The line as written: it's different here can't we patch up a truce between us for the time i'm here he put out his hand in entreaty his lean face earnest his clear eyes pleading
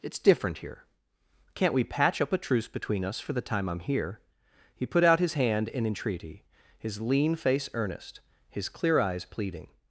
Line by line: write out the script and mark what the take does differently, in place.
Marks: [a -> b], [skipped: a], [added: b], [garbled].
it's different here can't we patch up a truce between us for the time i'm here he put out his hand in entreaty his lean face earnest his clear eyes pleading